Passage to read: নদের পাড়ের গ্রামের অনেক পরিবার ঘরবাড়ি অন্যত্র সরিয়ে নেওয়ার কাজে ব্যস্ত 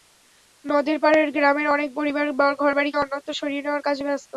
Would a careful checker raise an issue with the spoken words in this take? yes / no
no